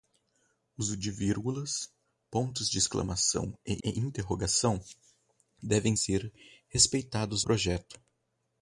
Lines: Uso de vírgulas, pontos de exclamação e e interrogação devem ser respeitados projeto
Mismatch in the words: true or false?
false